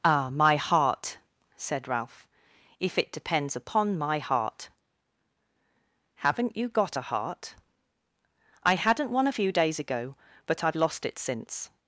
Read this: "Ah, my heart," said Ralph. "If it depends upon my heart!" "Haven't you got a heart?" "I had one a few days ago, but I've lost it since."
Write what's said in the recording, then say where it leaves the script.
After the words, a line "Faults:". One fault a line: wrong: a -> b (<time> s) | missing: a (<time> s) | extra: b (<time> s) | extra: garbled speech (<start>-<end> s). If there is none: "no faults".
"Ah, my heart," said Ralph. "If it depends upon my heart!" "Haven't you got a heart?" "I hadn't one a few days ago, but I've lost it since."
Faults:
wrong: had -> hadn't (8.7 s)